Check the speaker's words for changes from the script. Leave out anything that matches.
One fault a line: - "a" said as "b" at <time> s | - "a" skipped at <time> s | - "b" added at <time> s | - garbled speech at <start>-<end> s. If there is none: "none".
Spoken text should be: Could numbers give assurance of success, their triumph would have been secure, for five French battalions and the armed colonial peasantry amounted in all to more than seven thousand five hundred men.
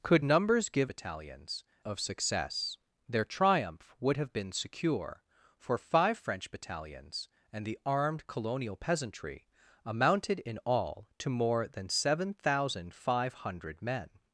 - "assurance" said as "battalions" at 0.9 s